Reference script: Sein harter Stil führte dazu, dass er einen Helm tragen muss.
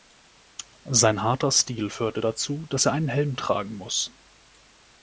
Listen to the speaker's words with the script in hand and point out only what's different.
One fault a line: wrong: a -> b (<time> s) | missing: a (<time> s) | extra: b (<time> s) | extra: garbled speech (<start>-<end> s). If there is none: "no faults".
no faults